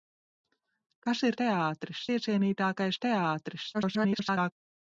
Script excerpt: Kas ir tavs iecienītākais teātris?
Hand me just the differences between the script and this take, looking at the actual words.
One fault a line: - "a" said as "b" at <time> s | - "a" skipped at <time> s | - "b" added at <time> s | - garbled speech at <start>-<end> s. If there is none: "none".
- "tavs" said as "teātris" at 1.4 s
- garbled speech at 3.7-4.5 s